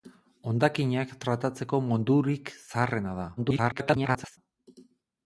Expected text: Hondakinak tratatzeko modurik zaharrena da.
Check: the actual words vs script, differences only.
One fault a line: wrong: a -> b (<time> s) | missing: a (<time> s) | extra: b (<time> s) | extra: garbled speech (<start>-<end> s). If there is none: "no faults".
extra: garbled speech (3.4-4.4 s)